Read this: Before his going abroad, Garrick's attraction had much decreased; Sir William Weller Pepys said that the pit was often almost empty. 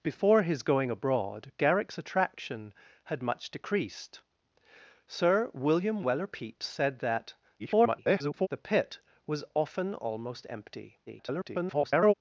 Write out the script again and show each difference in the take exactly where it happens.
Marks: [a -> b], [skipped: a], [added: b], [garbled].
Before his going abroad, Garrick's attraction had much decreased; Sir William Weller Pepys said that [garbled] the pit was often almost empty. [garbled]